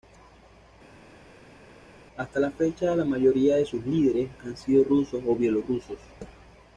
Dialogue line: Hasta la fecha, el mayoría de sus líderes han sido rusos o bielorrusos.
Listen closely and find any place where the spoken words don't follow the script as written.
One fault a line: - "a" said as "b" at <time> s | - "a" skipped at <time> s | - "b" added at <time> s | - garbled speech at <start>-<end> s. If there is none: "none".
- "el" said as "la" at 2.9 s